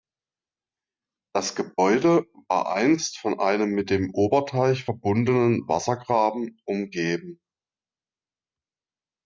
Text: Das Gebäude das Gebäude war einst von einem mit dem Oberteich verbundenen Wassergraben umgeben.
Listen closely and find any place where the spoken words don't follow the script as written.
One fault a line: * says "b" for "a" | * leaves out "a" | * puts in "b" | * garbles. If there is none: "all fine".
* leaves out "das Gebäude"